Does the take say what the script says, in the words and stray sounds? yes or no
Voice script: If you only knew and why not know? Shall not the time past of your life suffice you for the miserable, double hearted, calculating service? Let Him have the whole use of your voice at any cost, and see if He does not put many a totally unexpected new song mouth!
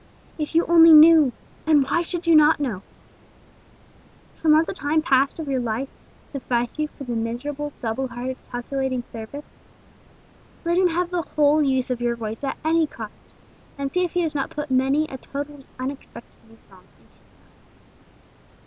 no